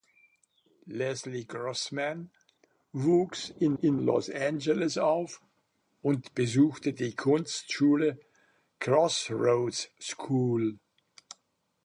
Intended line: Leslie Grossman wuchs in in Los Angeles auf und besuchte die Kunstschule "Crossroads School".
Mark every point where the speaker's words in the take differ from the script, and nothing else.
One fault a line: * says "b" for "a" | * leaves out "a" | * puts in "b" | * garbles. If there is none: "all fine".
all fine